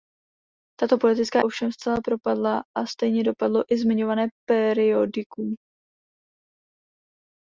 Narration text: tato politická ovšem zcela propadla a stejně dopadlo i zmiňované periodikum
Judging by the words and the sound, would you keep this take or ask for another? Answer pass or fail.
pass